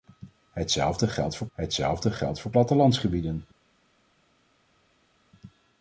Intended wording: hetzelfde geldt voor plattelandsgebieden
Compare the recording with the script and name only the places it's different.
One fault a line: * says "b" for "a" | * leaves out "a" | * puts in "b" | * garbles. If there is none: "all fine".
* puts in "hetzelfde geldt voor"